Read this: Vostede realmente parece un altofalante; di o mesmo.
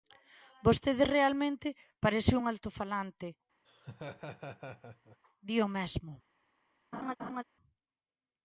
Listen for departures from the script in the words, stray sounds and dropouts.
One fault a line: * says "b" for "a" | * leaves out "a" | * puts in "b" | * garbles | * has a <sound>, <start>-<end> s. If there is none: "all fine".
* has a laugh, 3.6-5.2 s
* has a laugh, 6.9-7.4 s